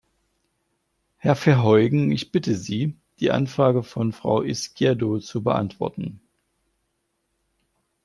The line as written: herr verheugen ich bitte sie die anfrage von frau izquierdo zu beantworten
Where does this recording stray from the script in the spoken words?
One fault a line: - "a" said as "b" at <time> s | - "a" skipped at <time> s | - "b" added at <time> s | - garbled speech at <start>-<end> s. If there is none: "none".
none